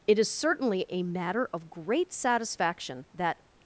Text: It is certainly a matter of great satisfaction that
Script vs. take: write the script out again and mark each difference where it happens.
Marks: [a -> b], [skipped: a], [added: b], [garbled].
It is certainly a matter of great satisfaction that